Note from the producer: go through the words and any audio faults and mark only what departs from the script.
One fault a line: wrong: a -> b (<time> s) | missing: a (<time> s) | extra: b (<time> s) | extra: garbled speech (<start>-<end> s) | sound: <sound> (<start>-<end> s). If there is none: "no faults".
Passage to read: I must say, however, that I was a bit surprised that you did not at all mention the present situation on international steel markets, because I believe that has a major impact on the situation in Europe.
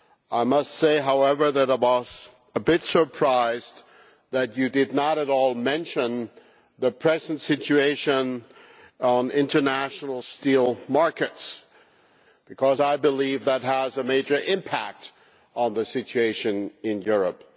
no faults